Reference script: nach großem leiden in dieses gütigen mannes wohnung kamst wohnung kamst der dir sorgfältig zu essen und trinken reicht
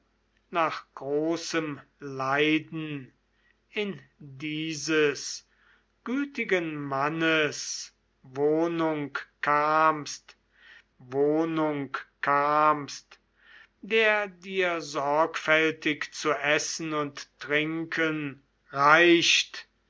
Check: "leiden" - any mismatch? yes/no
no